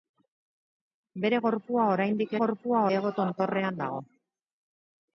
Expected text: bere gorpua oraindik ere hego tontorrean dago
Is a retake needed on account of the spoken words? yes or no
yes